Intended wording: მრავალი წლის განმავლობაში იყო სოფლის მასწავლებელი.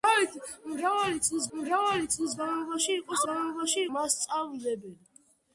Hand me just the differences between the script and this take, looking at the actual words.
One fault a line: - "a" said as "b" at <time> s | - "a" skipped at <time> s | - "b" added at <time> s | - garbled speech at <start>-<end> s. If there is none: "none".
- "მრავალი წლის" added at 1.6 s
- "სოფლის" said as "განმავლობაში" at 3.3 s